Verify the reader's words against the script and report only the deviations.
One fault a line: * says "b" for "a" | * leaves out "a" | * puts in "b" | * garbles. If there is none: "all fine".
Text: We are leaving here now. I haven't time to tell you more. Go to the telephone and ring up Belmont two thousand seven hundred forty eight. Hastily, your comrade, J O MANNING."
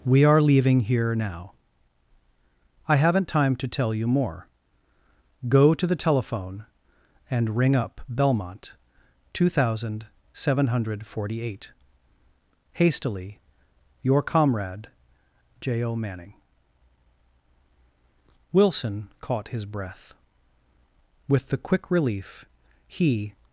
* puts in "Wilson caught his breath With the quick relief he"